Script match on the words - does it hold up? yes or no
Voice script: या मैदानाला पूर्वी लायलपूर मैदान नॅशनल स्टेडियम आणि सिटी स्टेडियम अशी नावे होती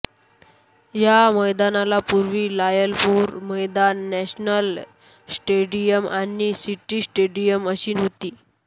no